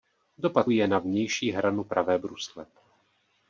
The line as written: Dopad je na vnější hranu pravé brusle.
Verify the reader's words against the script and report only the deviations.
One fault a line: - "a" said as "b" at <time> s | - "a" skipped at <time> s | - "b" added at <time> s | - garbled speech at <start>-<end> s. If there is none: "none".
none